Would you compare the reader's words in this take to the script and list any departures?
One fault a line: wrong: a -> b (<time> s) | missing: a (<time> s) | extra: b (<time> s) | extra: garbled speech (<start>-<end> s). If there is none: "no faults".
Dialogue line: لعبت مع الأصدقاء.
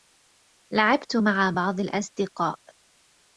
extra: بعض (1.6 s)